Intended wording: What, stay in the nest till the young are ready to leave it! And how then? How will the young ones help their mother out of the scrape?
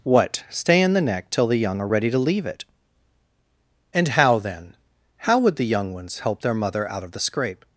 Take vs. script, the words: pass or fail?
fail